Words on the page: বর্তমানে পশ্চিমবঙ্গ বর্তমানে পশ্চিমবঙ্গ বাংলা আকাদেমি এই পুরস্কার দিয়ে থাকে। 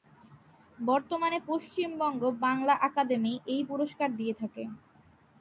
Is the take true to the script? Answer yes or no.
no